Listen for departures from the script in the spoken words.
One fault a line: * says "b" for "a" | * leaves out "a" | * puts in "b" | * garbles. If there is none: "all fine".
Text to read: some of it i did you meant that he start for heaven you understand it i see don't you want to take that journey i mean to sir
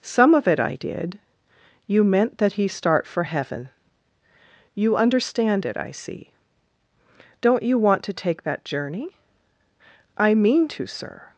all fine